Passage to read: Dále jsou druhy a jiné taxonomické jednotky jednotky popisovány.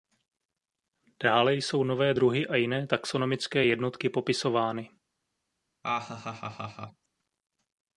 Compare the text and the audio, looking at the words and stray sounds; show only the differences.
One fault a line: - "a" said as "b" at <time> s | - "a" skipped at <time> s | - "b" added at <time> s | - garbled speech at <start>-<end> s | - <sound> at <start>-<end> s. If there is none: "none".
- "nové" added at 1.8 s
- "jednotky" skipped at 4.1 s
- laugh at 5.8-7.1 s